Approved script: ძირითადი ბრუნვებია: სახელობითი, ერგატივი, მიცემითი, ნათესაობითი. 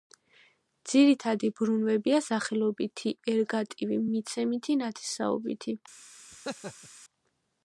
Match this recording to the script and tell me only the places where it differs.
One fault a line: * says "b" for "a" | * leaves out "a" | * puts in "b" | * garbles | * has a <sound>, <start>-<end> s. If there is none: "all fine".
* has a laugh, 6.3-6.9 s